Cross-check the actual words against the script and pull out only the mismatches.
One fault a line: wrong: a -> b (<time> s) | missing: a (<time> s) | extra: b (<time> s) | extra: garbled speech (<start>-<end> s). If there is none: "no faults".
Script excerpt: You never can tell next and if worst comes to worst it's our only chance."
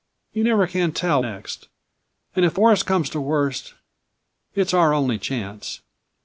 no faults